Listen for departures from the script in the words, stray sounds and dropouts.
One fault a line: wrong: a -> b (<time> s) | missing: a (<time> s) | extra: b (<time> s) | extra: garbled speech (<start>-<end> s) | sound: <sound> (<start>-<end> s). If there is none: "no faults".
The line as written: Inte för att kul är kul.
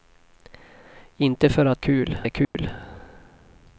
sound: dropout (2.4-2.5 s)